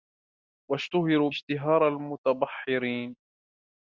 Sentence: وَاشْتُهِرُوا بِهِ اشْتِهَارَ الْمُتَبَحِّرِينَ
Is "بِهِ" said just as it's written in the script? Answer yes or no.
no